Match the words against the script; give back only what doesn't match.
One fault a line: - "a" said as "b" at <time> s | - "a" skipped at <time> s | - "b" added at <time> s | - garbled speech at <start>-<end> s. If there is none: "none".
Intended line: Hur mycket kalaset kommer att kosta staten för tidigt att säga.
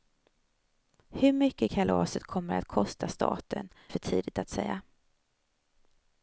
none